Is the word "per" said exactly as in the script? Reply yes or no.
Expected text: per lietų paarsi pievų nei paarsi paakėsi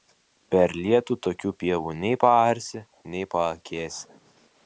yes